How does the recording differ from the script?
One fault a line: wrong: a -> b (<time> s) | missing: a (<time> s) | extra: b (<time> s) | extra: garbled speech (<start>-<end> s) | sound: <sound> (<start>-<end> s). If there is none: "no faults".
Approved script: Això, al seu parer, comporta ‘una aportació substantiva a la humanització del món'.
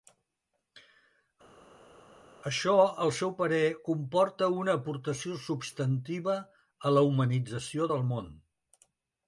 no faults